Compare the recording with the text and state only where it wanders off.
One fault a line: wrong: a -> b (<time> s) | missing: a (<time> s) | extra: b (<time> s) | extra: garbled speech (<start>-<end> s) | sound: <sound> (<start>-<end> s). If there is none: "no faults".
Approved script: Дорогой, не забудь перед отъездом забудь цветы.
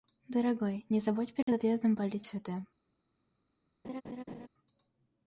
sound: dropout (1.4-1.5 s)
wrong: забудь -> полить (2.0 s)
sound: laugh (3.8-4.5 s)